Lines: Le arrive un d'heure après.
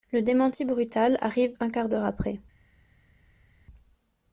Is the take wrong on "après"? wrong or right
right